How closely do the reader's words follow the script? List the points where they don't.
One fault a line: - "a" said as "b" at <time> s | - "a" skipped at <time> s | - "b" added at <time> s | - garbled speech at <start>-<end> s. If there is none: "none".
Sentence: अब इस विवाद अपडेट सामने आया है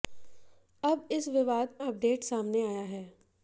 none